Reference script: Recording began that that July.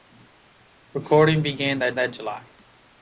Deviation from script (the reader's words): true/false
false